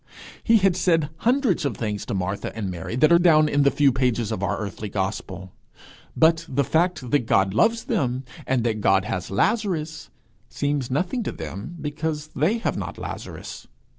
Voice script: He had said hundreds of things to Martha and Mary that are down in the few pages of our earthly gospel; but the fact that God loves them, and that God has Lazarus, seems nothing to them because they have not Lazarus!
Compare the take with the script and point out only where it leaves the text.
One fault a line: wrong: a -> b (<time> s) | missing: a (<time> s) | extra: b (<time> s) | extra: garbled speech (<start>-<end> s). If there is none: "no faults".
no faults